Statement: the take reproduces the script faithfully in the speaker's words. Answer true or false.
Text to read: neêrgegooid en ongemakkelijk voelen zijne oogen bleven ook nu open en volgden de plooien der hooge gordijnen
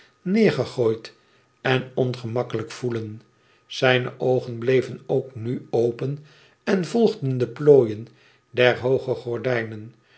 true